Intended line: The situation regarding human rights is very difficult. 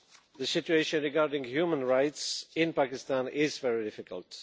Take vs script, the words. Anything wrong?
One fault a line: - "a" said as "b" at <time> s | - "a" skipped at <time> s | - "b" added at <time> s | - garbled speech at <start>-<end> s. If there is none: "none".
- "in Pakistan" added at 2.5 s